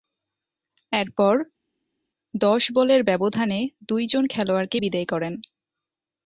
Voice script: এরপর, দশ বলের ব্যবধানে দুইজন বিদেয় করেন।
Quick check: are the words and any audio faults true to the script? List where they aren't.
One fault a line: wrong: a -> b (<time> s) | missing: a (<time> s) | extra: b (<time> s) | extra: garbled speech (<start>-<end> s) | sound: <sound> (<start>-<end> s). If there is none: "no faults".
extra: খেলোয়াড়কে (4.3 s)